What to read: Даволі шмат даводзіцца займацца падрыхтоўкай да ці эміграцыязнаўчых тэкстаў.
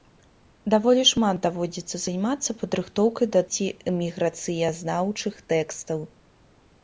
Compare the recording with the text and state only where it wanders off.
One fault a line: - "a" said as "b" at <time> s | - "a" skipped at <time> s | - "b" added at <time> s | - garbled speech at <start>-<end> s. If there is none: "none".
none